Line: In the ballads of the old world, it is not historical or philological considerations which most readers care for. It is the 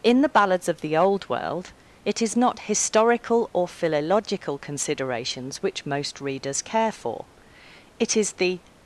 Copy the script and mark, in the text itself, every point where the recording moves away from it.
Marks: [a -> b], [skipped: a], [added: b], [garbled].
In the ballads of the old world, it is not historical or philological considerations which most readers care for. It is the